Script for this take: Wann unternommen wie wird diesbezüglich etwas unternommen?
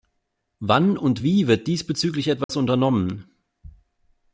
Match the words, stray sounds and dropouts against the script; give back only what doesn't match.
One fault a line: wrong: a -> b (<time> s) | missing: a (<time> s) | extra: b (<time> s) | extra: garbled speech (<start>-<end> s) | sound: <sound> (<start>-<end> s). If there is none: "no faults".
wrong: unternommen -> und (1.0 s)
sound: dropout (2.4-2.5 s)